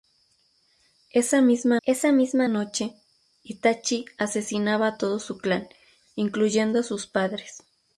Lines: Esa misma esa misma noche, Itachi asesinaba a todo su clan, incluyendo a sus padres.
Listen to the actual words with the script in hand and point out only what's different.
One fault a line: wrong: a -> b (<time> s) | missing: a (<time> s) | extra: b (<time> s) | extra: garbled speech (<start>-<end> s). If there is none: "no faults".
no faults